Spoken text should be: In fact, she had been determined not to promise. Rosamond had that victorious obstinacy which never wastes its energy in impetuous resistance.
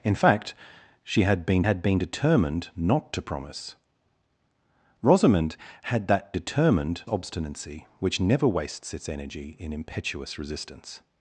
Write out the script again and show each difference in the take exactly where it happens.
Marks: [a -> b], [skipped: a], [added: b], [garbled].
In fact, she had been [added: had been] determined not to promise. Rosamond had that [victorious -> determined] obstinacy which never wastes its energy in impetuous resistance.